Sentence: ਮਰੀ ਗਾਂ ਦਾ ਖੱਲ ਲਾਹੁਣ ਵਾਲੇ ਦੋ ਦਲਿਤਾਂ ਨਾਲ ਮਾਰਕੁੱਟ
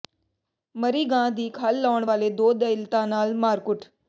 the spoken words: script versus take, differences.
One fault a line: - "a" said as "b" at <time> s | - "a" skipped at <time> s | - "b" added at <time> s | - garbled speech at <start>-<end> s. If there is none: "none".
- "ਦਾ" said as "ਦੀ" at 1.3 s